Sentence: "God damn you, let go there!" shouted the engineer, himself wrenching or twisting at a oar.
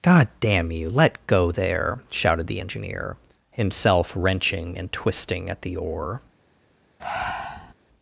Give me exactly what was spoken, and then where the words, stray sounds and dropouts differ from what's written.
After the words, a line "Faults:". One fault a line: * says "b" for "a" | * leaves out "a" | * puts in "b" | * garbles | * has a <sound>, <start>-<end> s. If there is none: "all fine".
"God damn you, let go there!" shouted the engineer, himself wrenching and twisting at the oar.
Faults:
* says "and" for "or"
* says "the" for "a"
* has a breath, 7.0-7.7 s